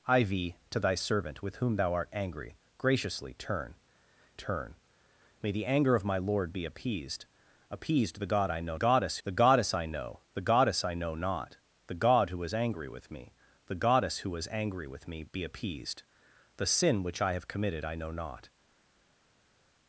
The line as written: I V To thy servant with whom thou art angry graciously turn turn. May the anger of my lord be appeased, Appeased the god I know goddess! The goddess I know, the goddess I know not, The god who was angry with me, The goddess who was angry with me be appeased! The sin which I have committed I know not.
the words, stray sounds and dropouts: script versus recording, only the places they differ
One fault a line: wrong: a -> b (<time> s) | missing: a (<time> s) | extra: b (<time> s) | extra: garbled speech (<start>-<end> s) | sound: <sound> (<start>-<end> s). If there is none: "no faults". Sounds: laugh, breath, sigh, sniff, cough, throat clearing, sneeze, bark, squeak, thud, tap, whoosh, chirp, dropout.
no faults